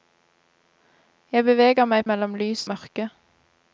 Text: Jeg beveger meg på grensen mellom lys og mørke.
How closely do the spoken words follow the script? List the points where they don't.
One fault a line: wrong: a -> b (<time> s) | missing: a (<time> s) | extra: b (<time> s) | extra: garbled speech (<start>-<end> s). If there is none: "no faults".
missing: på grensen (2.0 s)
missing: og (2.7 s)